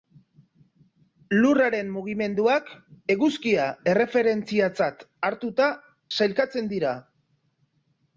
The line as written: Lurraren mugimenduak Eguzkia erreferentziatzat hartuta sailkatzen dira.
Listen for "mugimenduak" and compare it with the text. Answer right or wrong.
right